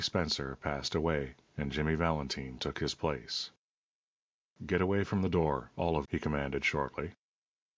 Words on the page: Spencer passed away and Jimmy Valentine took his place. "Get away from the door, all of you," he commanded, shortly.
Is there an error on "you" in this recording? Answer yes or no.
yes